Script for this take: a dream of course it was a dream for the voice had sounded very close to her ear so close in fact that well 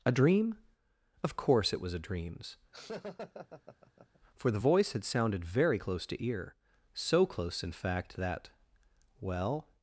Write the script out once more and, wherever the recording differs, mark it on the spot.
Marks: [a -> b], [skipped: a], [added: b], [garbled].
a dream of course it was a [dream -> dreams] for the voice had sounded very close to [skipped: her] ear so close in fact that well